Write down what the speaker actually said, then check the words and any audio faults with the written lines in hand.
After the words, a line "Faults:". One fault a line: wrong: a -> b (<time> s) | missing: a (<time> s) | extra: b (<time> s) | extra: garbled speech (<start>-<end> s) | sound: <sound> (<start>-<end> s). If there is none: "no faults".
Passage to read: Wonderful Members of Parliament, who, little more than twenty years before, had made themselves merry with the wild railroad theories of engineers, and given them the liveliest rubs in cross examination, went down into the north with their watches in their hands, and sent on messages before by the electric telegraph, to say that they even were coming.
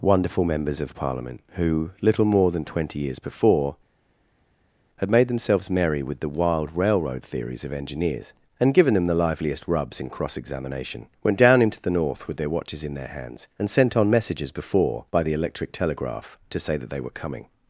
Wonderful Members of Parliament, who, little more than twenty years before, had made themselves merry with the wild railroad theories of engineers, and given them the liveliest rubs in cross examination, went down into the north with their watches in their hands, and sent on messages before by the electric telegraph, to say that they were coming.
Faults:
missing: even (17.0 s)